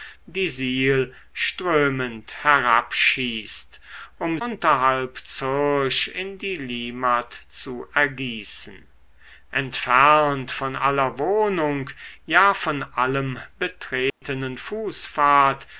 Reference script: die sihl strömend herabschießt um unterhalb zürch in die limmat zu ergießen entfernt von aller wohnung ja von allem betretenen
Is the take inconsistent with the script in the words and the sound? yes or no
yes